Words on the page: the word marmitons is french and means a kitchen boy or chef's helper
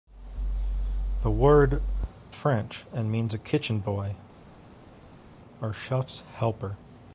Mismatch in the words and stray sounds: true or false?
true